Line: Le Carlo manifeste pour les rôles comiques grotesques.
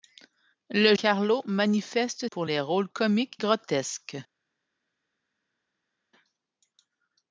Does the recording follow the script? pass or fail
pass